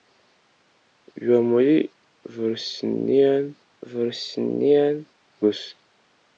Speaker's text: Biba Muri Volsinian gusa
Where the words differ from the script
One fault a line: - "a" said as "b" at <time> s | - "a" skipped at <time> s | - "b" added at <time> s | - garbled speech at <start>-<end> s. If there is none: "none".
- "Volsinian" added at 3.9 s